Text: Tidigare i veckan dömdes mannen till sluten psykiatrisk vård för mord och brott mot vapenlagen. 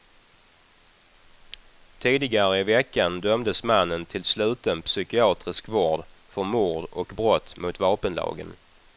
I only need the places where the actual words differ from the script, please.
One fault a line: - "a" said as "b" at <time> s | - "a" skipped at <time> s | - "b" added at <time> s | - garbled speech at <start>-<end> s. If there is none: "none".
none